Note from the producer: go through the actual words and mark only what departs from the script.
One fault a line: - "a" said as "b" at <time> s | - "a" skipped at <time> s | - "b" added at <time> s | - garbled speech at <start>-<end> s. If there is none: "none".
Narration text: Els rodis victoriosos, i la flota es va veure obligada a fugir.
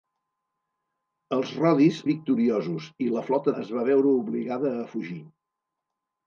none